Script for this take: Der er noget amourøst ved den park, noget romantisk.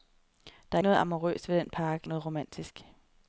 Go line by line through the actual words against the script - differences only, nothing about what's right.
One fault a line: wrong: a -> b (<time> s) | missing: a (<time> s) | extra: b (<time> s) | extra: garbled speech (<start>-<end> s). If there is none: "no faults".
no faults